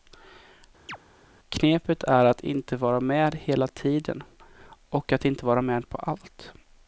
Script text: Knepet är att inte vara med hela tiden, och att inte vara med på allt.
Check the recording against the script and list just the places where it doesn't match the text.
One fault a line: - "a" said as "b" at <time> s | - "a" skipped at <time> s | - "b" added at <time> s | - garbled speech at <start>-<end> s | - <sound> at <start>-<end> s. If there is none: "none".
- chirp at 0.9-1.0 s